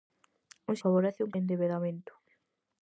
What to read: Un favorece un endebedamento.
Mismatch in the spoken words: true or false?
false